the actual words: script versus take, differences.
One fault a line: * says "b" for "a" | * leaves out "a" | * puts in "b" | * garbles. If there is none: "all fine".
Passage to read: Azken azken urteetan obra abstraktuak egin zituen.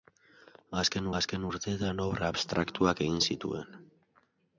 all fine